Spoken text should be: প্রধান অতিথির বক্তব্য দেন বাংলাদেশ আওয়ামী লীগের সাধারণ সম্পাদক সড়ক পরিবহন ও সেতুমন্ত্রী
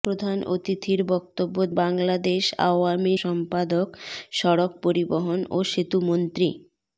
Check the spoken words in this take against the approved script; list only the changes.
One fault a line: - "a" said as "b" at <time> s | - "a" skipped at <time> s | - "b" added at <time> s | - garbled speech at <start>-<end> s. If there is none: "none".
- "দেন" skipped at 1.6 s
- "লীগের সাধারণ" skipped at 3.1 s